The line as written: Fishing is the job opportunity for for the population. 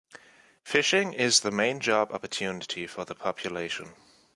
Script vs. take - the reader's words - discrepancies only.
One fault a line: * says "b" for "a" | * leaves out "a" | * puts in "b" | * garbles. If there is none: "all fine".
* puts in "main"
* leaves out "for"